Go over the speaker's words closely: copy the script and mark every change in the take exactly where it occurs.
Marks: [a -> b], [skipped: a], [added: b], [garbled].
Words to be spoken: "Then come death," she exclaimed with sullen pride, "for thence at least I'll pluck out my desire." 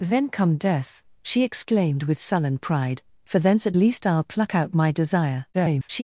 "Then come death," she exclaimed with sullen pride, "for thence at least I'll pluck out my desire." [garbled]